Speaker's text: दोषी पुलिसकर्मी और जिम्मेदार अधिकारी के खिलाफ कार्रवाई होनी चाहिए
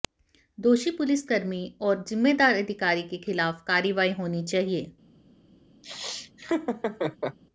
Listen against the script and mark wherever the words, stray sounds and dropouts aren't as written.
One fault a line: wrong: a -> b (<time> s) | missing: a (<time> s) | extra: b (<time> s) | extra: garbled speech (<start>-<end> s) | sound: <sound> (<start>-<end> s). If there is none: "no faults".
sound: laugh (5.8-7.4 s)